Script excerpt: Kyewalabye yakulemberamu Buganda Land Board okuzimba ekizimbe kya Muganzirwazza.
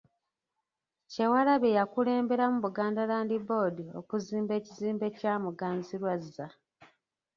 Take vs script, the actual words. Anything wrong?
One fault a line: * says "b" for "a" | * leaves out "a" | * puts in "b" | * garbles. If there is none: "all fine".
all fine